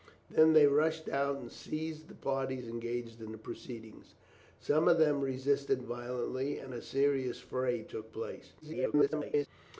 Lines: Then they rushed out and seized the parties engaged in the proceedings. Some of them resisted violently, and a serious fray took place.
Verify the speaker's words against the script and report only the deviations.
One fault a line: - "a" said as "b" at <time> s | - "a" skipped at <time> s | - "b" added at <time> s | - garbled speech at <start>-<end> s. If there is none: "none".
- garbled speech at 8.6-9.5 s